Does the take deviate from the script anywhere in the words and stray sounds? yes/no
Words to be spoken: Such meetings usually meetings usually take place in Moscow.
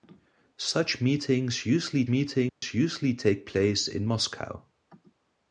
yes